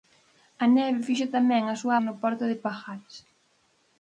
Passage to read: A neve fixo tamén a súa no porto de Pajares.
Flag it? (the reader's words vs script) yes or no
no